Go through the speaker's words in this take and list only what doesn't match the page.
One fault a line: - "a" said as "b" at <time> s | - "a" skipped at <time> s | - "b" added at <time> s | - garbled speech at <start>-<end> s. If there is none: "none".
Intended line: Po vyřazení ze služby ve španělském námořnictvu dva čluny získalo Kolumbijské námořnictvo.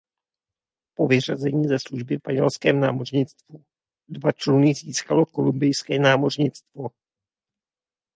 - "ve" skipped at 2.2 s